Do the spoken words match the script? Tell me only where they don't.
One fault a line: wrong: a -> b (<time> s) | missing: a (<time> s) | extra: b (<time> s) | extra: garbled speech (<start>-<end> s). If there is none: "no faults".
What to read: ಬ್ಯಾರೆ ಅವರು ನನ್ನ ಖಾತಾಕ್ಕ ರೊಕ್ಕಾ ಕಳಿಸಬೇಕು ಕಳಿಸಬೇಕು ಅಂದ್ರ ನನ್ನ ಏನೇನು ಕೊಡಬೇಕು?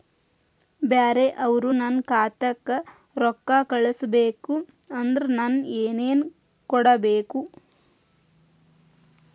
missing: ಕಳಿಸಬೇಕು (4.6 s)